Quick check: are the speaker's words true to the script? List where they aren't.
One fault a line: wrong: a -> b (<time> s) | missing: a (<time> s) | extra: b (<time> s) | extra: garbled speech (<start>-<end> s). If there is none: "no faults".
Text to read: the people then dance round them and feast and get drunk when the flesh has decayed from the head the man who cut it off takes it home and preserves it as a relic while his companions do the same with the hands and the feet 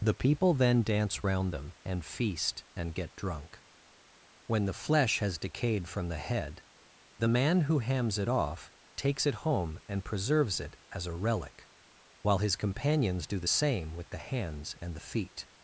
wrong: cut -> hams (7.8 s)